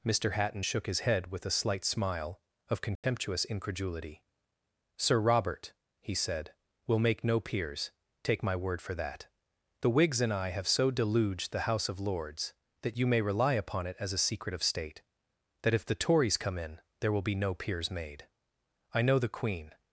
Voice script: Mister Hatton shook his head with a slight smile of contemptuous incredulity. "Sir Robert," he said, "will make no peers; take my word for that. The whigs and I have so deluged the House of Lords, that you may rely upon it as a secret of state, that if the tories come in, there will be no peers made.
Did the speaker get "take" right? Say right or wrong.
right